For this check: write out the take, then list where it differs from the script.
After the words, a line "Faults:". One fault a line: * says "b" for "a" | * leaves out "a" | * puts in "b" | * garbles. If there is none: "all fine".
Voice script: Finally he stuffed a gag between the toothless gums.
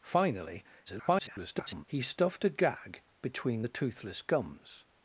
Finally [garbled] he stuffed a gag between the toothless gums.
Faults:
* garbles